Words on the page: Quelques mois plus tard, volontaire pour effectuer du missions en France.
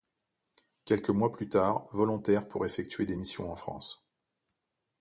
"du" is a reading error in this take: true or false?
true